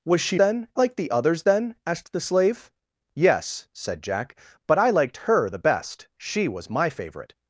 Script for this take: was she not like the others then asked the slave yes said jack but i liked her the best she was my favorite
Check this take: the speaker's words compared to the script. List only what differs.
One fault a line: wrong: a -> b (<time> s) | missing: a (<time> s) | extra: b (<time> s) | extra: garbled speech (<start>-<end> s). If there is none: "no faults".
wrong: not -> then (0.3 s)